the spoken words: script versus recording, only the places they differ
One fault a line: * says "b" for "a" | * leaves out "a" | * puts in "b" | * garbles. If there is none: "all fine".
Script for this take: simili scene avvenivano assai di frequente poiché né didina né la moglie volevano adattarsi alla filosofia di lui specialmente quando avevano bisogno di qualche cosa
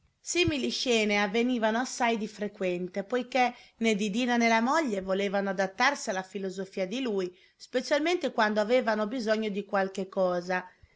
all fine